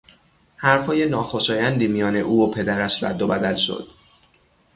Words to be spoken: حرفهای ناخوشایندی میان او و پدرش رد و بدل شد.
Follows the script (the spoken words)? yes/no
yes